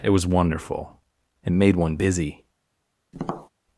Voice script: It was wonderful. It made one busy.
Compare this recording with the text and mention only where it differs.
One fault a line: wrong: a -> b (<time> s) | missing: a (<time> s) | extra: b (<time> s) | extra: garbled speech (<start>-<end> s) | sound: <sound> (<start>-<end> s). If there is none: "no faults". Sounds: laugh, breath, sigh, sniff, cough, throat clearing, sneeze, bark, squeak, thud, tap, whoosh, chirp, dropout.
sound: tap (3.1-3.5 s)